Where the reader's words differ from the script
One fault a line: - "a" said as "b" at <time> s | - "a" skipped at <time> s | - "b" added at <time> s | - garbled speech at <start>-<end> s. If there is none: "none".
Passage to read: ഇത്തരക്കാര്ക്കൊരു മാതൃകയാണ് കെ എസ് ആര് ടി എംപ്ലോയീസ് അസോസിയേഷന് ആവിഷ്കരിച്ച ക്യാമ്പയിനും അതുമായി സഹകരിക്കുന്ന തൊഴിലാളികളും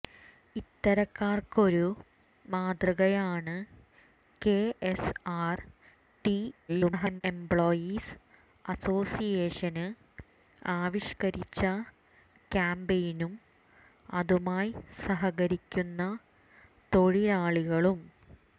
- garbled speech at 6.7-7.2 s